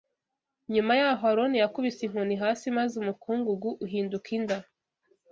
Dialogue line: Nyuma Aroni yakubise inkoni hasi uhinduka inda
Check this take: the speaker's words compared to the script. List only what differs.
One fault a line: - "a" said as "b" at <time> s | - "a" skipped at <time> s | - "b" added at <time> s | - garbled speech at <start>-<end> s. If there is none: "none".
- "y'aho" added at 1.0 s
- "maze umukungugu" added at 2.8 s